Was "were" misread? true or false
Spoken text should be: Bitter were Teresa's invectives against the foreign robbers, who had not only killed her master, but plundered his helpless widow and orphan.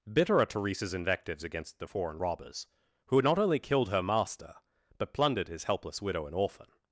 true